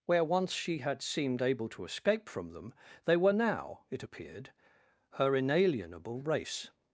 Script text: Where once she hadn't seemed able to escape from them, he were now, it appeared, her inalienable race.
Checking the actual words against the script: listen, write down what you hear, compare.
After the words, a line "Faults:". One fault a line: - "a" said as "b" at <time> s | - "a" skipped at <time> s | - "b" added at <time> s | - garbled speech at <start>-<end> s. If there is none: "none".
Where once she had seemed able to escape from them, they were now, it appeared, her inalienable race.
Faults:
- "hadn't" said as "had" at 0.8 s
- "he" said as "they" at 3.0 s